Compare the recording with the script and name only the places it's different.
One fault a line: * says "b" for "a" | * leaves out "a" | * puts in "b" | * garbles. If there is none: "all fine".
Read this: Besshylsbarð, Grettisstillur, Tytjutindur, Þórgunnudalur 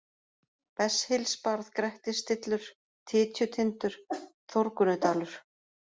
all fine